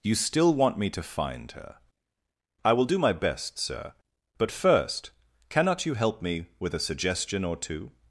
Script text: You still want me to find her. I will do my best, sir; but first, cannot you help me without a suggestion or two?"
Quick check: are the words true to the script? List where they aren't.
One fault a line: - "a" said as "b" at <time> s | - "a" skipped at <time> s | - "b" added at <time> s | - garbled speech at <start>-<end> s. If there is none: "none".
- "without" said as "with" at 6.6 s